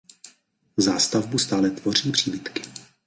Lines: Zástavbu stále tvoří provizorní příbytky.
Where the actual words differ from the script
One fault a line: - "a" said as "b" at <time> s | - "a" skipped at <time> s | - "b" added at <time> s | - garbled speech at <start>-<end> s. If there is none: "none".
- "provizorní" skipped at 2.1 s